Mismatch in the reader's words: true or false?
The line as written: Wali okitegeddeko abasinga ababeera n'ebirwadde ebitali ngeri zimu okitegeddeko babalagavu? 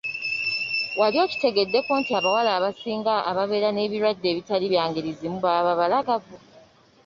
true